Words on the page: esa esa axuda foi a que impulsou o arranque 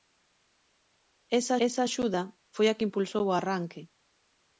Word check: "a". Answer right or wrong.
right